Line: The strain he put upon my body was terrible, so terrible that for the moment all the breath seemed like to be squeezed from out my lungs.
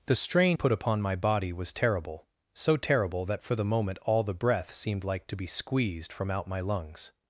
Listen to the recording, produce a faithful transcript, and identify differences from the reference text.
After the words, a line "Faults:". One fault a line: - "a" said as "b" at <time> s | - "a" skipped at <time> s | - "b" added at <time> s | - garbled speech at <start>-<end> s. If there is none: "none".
The strain put upon my body was terrible, so terrible that for the moment all the breath seemed like to be squeezed from out my lungs.
Faults:
- "he" skipped at 0.6 s